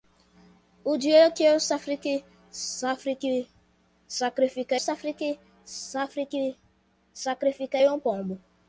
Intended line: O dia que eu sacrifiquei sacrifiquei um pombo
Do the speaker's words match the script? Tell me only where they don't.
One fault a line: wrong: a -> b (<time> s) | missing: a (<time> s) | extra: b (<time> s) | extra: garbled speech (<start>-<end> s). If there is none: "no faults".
no faults